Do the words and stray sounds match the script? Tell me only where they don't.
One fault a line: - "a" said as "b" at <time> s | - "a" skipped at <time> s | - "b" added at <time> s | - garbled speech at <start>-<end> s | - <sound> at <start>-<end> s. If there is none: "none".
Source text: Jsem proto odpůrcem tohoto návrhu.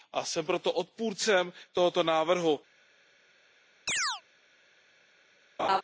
- chirp at 3.9-4.2 s
- laugh at 5.6-5.8 s